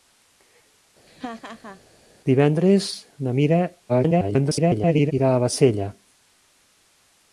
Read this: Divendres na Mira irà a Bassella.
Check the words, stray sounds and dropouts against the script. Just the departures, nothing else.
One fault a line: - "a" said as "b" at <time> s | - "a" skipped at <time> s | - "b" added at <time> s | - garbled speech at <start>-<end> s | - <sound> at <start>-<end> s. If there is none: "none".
- laugh at 1.1-1.8 s
- garbled speech at 3.9-5.1 s